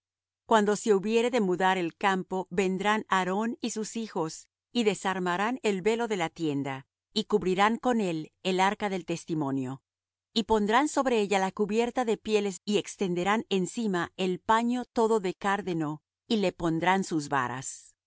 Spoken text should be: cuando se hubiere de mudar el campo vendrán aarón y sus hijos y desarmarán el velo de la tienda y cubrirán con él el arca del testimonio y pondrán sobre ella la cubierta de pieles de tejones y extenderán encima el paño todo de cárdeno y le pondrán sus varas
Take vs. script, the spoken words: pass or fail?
fail